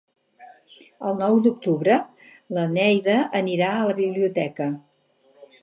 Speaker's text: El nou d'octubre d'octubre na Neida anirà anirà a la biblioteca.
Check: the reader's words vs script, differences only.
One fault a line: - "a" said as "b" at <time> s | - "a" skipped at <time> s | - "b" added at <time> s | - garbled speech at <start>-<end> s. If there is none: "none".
- "d'octubre" skipped at 2.0 s
- "anirà" skipped at 3.7 s